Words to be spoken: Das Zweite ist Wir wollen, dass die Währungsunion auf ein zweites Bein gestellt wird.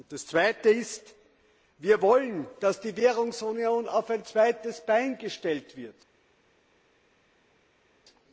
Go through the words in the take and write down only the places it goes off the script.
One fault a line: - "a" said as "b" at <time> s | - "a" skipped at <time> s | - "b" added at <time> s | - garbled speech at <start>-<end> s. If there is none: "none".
none